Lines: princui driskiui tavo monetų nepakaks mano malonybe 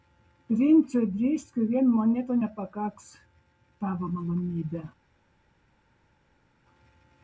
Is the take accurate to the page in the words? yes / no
no